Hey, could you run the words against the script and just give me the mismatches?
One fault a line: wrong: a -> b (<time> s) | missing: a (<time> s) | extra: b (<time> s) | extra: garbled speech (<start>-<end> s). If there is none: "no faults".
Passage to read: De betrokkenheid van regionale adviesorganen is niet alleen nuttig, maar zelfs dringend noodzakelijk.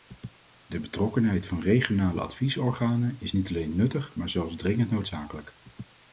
no faults